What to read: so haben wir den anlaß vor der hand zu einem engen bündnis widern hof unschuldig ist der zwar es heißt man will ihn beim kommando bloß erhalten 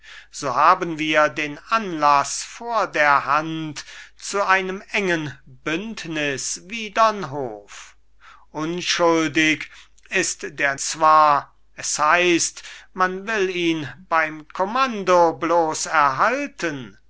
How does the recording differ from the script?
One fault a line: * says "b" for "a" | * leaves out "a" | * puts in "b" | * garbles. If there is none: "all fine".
all fine